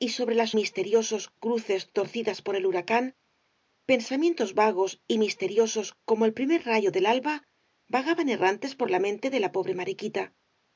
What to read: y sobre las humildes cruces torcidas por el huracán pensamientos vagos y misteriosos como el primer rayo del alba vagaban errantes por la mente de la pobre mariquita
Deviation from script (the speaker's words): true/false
true